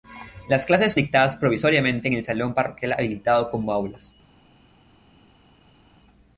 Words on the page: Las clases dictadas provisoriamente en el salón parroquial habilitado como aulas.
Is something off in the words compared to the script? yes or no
no